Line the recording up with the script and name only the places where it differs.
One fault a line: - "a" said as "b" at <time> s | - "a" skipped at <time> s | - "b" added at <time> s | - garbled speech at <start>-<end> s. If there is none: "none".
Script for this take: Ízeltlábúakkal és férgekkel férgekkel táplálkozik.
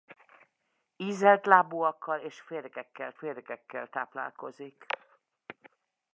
none